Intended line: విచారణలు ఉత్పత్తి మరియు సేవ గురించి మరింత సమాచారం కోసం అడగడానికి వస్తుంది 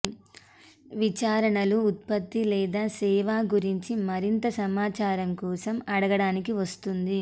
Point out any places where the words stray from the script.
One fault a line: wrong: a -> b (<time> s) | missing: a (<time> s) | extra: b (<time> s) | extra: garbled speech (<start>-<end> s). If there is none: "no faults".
wrong: మరియు -> లేదా (2.5 s)